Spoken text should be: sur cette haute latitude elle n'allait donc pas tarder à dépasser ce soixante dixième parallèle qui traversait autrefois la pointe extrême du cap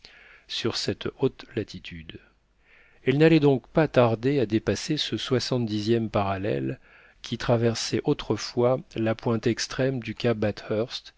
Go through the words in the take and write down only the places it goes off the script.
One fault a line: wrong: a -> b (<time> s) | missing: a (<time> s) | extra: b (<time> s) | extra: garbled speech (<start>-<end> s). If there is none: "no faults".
no faults